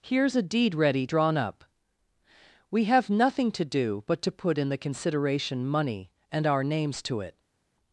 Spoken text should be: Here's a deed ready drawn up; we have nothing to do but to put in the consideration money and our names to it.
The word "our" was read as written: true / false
true